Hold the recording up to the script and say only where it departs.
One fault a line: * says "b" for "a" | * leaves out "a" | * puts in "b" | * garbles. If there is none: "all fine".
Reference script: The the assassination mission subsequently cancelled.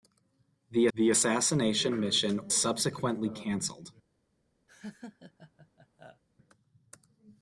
all fine